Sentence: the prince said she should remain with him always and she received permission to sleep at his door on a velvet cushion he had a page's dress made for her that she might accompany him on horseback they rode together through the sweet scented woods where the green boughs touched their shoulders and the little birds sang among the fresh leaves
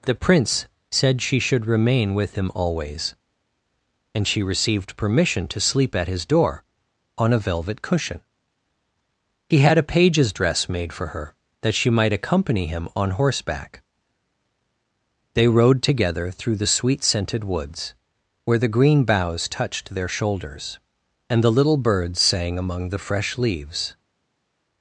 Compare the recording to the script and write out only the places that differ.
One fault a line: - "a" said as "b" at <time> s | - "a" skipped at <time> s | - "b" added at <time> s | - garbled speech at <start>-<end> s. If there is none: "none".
none